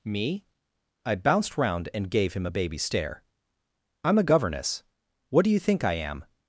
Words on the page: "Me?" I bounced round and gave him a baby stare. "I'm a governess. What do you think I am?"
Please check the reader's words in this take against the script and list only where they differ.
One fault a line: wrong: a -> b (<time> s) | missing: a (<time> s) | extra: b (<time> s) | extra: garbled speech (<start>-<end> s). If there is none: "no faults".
no faults